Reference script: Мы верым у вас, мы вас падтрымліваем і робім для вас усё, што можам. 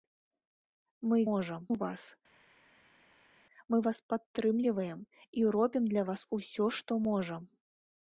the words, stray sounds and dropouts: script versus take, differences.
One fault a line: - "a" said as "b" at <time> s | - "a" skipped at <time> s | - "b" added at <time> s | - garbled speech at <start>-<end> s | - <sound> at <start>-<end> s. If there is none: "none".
- "верым" said as "можам" at 1.3 s